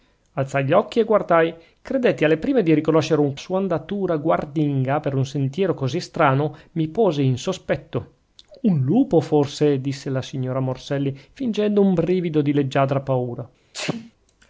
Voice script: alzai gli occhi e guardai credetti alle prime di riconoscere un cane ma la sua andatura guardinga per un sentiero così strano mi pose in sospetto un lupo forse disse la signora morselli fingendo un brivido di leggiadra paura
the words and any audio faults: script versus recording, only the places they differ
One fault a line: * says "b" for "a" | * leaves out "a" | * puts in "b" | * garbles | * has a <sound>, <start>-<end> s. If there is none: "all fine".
* leaves out "cane ma la"
* has a sneeze, 13.7-14.1 s